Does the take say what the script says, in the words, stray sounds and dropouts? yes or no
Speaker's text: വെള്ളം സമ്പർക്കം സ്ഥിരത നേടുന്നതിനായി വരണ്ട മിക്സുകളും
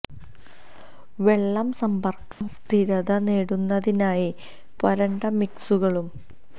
no